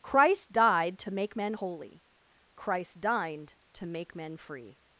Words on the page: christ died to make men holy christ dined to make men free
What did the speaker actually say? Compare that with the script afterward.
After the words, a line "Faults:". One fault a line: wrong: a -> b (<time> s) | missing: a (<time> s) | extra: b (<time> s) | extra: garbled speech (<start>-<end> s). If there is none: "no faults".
christ died to make men holy christ dined to make men free
Faults:
no faults